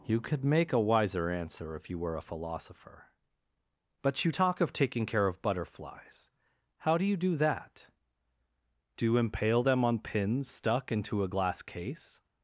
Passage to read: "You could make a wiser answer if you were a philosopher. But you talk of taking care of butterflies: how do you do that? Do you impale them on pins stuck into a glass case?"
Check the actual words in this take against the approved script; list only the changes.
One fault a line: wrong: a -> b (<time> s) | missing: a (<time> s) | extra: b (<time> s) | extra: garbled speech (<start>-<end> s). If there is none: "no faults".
no faults